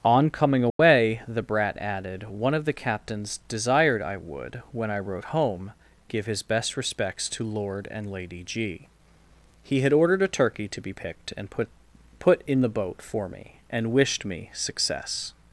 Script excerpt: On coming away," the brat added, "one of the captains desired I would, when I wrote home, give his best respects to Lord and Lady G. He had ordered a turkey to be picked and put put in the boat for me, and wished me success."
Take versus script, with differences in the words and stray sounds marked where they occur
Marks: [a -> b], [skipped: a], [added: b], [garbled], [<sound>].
On coming away," [dropout] the brat added, "one of the captains desired I would, when I wrote home, give his best respects to Lord and Lady G. He had ordered a turkey to be picked and put put in the boat for me, and wished me success."